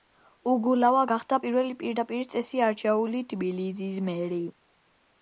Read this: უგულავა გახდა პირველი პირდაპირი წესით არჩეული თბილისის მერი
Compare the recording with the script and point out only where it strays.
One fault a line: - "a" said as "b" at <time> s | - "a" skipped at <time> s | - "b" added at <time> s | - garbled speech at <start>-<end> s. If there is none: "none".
none